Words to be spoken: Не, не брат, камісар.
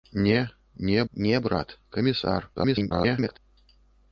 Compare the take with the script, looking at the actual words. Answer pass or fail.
fail